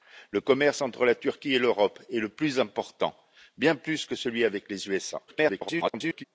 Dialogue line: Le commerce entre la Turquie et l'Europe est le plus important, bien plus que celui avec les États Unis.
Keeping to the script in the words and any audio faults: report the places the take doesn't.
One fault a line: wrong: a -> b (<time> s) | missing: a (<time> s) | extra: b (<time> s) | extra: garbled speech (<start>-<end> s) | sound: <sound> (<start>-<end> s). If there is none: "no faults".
extra: garbled speech (5.3-6.2 s)